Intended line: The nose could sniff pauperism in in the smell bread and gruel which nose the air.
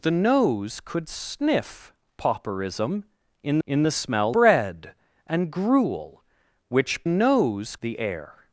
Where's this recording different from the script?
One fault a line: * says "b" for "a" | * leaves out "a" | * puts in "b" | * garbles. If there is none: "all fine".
all fine